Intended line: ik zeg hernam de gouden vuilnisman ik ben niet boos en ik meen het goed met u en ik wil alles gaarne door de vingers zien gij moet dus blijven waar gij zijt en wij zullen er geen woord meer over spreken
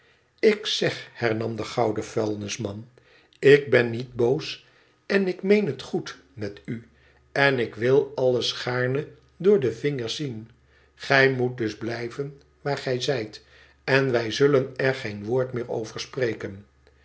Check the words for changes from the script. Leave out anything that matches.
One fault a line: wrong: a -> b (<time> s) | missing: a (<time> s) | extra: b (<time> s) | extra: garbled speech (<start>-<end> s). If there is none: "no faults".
no faults